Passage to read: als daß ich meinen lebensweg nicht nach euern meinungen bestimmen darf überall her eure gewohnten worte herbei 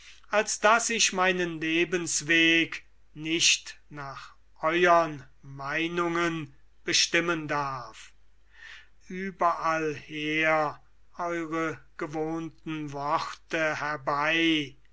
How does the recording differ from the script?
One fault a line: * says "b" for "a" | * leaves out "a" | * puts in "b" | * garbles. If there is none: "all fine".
all fine